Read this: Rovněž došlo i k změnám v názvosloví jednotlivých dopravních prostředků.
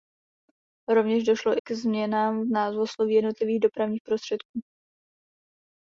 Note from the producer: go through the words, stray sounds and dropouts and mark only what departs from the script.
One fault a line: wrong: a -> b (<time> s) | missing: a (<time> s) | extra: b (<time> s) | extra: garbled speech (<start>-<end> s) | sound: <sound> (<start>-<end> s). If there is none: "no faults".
missing: i (1.6 s)